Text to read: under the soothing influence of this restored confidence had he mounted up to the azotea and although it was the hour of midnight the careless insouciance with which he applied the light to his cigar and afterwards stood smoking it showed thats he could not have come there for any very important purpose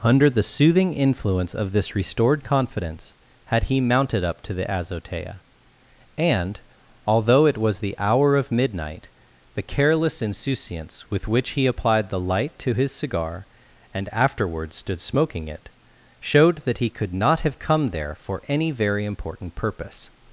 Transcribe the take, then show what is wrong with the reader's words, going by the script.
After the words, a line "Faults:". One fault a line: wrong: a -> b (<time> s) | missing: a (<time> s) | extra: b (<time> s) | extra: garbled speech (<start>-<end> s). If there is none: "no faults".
under the soothing influence of this restored confidence had he mounted up to the azotea and although it was the hour of midnight the careless insouciance with which he applied the light to his cigar and afterwards stood smoking it showed that he could not have come there for any very important purpose
Faults:
wrong: thats -> that (16.6 s)